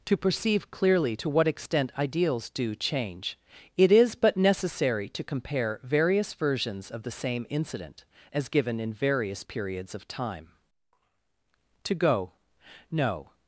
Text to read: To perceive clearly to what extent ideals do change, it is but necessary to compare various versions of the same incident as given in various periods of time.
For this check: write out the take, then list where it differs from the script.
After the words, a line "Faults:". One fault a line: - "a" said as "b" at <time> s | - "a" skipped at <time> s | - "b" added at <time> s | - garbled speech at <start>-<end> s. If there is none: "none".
To perceive clearly to what extent ideals do change, it is but necessary to compare various versions of the same incident as given in various periods of time. To go no
Faults:
- "To go no" added at 11.8 s